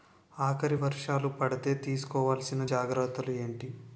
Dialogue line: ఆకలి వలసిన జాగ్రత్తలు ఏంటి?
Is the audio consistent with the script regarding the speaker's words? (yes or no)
no